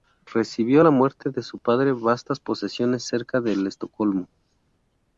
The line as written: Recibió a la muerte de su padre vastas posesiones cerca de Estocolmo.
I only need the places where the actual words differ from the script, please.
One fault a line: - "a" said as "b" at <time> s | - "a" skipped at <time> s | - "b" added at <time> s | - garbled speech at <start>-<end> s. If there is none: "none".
none